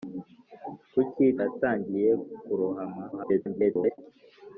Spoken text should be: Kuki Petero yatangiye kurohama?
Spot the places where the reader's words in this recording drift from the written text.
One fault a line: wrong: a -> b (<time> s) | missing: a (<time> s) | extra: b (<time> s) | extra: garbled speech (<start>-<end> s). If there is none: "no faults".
missing: Petero (1.2 s)
extra: garbled speech (3.1-4.0 s)